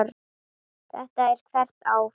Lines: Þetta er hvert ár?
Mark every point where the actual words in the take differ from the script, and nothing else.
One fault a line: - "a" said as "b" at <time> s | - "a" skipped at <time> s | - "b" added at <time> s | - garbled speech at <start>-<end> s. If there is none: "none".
none